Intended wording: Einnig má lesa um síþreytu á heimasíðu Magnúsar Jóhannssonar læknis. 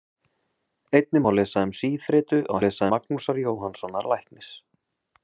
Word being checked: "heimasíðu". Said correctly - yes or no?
no